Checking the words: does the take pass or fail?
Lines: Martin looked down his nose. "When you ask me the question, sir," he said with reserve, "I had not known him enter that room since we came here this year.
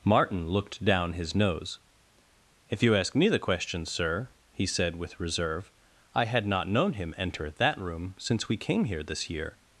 fail